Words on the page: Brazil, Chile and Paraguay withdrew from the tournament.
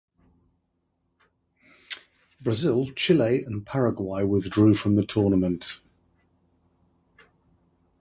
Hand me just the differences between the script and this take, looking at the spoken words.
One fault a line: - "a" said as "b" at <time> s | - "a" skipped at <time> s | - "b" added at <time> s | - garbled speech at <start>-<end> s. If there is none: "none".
none